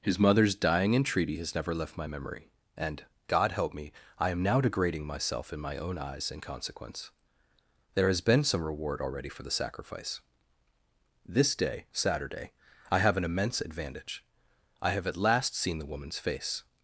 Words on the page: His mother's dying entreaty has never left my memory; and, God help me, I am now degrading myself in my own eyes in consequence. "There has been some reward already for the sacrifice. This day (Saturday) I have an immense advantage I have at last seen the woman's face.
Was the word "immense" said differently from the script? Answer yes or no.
no